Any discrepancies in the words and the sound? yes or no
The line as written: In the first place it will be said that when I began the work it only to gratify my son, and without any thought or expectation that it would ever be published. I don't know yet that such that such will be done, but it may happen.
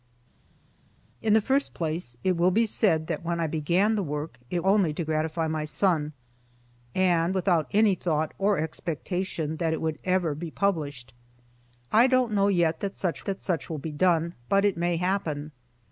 no